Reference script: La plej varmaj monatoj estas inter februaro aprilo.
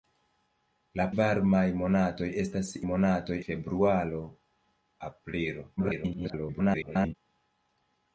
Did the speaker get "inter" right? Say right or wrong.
wrong